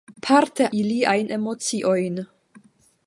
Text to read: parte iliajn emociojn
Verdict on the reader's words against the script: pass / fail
pass